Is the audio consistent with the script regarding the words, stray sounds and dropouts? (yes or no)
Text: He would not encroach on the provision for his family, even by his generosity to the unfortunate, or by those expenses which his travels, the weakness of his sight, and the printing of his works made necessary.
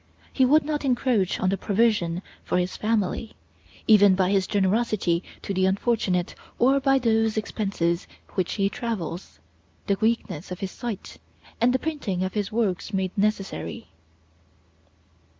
yes